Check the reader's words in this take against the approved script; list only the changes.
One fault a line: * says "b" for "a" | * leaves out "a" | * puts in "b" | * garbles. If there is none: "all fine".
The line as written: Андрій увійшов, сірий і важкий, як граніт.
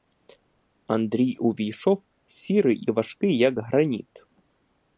all fine